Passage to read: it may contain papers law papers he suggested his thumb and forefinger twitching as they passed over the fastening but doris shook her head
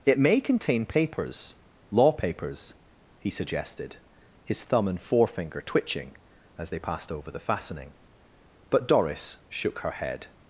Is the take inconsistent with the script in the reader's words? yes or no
no